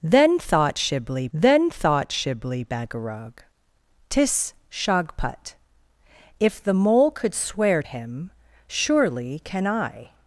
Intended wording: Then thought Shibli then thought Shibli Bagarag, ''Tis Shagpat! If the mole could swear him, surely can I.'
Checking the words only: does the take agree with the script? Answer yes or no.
yes